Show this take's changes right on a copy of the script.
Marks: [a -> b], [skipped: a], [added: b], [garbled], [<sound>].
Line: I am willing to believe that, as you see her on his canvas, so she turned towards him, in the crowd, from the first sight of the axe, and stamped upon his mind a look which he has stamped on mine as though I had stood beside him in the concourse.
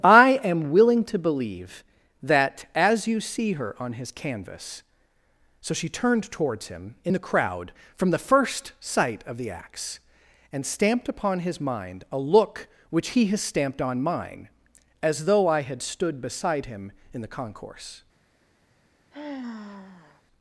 I am willing to believe that, as you see her on his canvas, so she turned towards him, in the crowd, from the first sight of the axe, and stamped upon his mind a look which he has stamped on mine as though I had stood beside him in the concourse. [sigh]